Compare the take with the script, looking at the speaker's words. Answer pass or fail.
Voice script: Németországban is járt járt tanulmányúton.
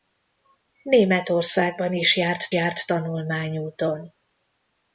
pass